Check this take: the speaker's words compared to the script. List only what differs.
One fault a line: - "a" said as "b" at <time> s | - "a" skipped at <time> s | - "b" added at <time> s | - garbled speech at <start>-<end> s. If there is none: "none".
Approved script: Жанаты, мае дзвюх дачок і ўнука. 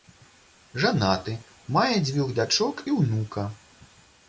none